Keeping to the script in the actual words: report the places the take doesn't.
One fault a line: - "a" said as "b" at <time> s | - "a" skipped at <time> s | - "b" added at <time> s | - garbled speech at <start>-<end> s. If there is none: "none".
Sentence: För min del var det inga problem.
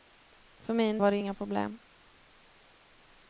- "del" skipped at 1.0 s